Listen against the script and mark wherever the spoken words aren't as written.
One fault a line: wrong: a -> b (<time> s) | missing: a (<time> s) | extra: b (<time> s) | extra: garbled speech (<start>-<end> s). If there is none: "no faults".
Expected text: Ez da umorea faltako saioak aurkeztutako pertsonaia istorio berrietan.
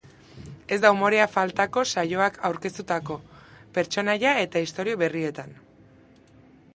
extra: eta (4.4 s)